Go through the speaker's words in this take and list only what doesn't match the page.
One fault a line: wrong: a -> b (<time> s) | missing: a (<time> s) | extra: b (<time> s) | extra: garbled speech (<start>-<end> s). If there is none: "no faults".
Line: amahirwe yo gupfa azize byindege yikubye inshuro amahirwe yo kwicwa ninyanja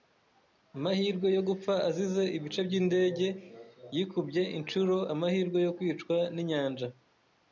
extra: ibice (2.4 s)